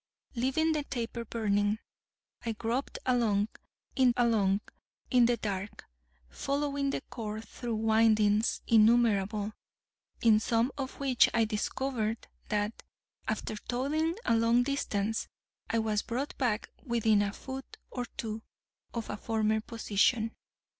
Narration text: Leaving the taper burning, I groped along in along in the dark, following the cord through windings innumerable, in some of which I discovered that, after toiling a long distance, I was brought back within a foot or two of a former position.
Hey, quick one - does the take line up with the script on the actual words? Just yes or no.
yes